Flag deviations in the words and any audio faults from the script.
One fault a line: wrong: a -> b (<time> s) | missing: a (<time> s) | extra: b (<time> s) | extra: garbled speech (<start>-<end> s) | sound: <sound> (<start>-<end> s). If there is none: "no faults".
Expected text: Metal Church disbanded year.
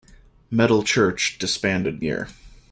no faults